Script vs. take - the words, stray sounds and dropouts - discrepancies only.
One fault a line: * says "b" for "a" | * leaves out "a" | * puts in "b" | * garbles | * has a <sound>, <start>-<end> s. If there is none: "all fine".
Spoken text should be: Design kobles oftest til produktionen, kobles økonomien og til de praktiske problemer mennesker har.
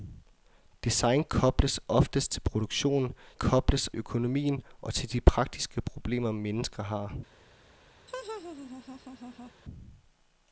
* has a laugh, 8.1-9.5 s